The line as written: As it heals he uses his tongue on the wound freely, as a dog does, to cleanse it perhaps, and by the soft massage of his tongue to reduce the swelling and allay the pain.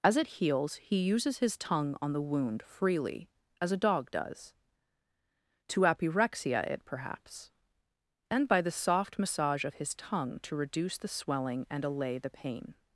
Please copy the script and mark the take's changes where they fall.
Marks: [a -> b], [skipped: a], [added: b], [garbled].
As it heals he uses his tongue on the wound freely, as a dog does, to [cleanse -> apyrexia] it perhaps, and by the soft massage of his tongue to reduce the swelling and allay the pain.